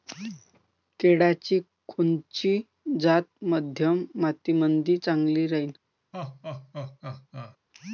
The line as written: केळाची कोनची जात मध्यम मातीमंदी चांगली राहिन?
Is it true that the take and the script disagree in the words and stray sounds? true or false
true